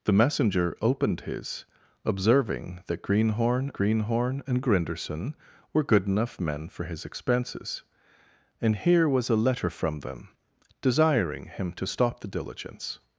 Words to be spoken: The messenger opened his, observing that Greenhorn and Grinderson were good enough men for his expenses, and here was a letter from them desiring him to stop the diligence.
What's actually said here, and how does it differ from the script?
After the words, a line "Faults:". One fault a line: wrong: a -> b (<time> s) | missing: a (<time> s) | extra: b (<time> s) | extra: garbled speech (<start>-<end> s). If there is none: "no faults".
The messenger opened his, observing that Greenhorn Greenhorn and Grinderson were good enough men for his expenses, and here was a letter from them desiring him to stop the diligence.
Faults:
extra: Greenhorn (3.7 s)